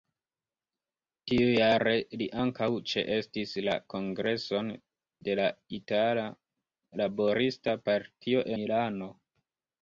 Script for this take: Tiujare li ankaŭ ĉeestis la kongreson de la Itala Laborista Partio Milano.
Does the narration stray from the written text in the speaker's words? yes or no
no